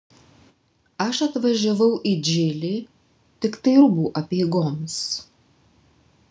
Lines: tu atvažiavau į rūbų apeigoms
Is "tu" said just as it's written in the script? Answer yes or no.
no